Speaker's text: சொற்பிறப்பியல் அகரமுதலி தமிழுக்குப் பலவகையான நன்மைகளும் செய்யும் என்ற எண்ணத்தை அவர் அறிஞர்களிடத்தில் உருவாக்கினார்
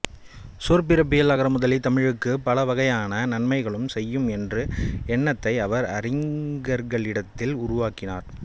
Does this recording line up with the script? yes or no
yes